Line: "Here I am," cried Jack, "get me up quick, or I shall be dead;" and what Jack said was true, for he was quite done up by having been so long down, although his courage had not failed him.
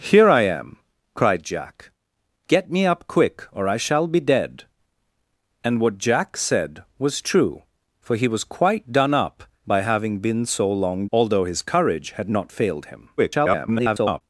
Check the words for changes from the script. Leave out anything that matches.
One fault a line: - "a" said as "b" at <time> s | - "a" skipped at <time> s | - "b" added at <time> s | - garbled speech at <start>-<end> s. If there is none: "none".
- "down" skipped at 11.1 s
- garbled speech at 13.2-14.2 s